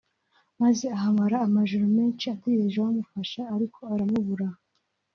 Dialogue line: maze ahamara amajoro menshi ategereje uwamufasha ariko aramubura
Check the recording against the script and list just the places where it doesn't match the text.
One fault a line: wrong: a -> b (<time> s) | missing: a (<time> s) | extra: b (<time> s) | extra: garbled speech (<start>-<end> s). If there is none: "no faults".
no faults